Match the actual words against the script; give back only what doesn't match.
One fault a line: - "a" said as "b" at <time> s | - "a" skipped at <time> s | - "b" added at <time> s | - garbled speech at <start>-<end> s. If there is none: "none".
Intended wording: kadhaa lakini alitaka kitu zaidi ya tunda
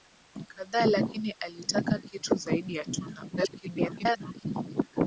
- garbled speech at 3.4-4.5 s